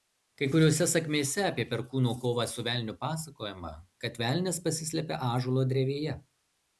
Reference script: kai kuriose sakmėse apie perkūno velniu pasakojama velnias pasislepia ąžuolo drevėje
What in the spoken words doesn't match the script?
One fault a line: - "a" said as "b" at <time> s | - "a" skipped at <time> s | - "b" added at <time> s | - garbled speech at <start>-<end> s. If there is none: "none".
- "kovą su" added at 2.2 s
- "kad" added at 4.1 s